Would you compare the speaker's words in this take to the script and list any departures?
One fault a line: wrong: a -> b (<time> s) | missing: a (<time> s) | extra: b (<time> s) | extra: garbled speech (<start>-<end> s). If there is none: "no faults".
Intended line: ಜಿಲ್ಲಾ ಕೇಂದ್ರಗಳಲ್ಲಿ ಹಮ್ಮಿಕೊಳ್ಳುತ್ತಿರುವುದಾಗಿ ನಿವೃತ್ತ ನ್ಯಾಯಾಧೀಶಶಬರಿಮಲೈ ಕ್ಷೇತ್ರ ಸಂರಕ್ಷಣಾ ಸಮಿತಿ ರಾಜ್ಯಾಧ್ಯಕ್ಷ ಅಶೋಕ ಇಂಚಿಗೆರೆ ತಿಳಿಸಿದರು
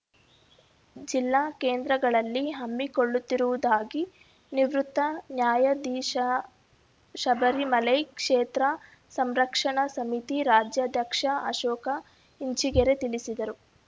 no faults